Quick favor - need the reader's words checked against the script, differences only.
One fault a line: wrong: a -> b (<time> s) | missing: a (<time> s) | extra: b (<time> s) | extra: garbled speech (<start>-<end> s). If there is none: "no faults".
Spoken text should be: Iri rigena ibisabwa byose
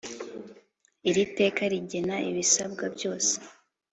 extra: teka (1.4 s)